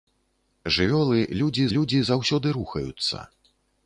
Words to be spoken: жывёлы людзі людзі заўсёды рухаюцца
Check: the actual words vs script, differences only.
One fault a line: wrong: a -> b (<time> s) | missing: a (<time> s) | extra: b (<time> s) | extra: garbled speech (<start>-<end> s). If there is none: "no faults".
no faults